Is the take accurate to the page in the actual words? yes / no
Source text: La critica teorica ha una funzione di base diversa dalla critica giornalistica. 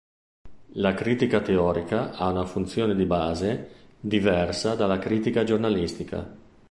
yes